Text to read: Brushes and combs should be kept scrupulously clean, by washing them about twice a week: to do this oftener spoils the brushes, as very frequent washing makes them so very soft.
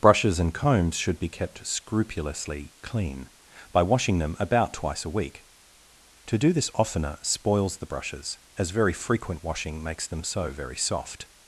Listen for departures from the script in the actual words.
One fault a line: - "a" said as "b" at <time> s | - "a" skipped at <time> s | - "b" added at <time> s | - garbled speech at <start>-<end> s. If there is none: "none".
none